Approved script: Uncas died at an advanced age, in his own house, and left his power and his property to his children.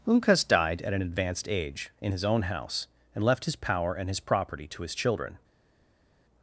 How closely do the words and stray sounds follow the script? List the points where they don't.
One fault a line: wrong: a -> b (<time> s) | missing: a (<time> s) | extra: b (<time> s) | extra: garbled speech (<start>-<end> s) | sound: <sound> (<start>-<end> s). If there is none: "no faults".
no faults